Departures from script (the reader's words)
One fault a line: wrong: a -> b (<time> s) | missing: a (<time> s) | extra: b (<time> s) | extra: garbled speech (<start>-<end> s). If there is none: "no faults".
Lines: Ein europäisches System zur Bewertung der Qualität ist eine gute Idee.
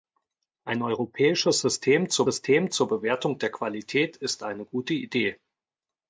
extra: System zur (2.2 s)